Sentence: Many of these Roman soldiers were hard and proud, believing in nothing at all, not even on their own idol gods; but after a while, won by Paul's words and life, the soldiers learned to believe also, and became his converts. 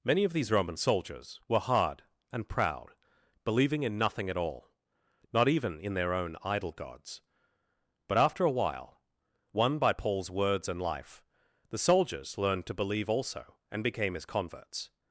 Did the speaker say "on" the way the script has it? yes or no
no